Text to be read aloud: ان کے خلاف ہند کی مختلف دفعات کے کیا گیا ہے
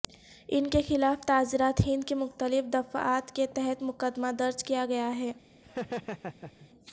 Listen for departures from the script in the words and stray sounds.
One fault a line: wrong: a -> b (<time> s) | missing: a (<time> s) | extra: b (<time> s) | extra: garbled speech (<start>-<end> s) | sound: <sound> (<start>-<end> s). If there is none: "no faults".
extra: تعزیرات (1.2 s)
extra: تحت مقدمہ درج (3.5 s)
sound: laugh (5.6-6.7 s)